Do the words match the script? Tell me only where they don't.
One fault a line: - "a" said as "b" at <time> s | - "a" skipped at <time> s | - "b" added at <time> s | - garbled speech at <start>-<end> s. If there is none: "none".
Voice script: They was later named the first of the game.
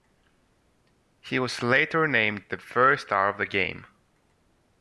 - "They" said as "He" at 1.2 s
- "star" added at 3.0 s